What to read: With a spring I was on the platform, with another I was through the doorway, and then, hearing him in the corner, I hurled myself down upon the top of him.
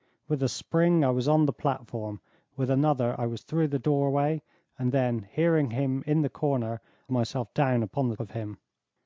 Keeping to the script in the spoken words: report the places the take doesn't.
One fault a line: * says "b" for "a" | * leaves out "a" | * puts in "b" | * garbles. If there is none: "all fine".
* leaves out "I hurled"
* leaves out "top"